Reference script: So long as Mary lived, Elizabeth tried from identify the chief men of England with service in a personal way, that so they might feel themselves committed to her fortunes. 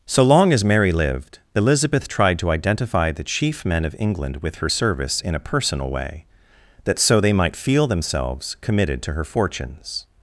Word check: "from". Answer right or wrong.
wrong